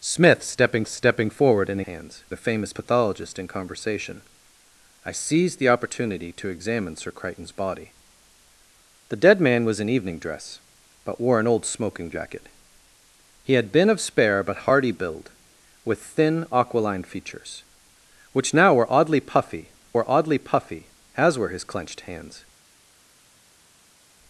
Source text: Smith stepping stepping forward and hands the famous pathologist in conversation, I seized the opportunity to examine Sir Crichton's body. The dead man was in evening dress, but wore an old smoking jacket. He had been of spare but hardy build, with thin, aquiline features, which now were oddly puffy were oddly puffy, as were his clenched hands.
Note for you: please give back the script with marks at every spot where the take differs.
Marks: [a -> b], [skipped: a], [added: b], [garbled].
Smith stepping stepping forward and hands the famous pathologist in conversation, I seized the opportunity to examine Sir Crichton's body. The dead man was in evening dress, but wore an old smoking jacket. He had been of spare but hardy build, with thin, aquiline features, which now were oddly puffy were oddly puffy, as were his clenched hands.